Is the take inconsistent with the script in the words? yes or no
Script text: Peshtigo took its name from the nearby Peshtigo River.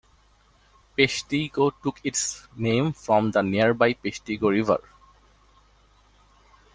no